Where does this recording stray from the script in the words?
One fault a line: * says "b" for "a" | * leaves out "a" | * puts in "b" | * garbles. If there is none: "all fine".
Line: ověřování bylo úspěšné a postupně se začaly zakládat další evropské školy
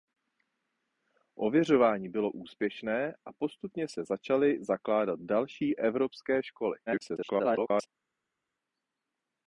* garbles